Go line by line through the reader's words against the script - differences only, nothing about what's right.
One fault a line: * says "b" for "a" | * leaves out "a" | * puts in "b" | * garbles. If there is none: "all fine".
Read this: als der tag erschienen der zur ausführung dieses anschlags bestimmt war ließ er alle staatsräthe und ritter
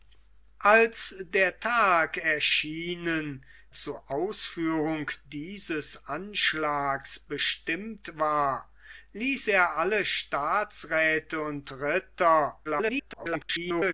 * leaves out "der"
* garbles